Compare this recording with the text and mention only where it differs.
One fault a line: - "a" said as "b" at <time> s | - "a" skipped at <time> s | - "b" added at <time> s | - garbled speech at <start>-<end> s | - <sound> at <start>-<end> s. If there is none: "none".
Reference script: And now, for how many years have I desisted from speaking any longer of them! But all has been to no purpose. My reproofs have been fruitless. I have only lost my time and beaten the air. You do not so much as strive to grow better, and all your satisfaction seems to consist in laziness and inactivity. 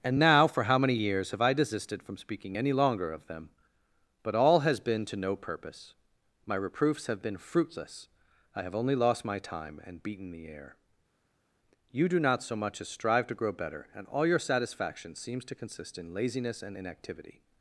none